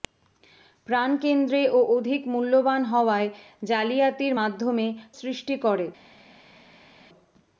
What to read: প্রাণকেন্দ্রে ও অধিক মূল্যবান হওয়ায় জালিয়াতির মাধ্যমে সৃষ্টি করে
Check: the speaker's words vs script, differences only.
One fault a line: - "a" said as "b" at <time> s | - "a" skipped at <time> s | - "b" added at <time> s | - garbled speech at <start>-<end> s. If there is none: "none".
none